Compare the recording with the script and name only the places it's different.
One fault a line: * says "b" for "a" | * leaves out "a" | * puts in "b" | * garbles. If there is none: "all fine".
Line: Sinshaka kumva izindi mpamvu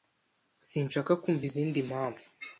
all fine